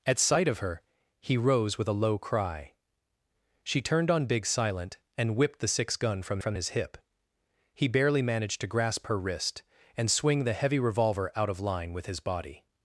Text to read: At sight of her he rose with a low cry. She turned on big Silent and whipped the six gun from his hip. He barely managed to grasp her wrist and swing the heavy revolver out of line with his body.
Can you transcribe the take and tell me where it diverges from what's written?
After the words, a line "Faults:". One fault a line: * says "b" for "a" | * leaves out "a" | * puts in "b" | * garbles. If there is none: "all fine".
At sight of her he rose with a low cry. She turned on big Silent and whipped the six gun from from his hip. He barely managed to grasp her wrist and swing the heavy revolver out of line with his body.
Faults:
* puts in "from"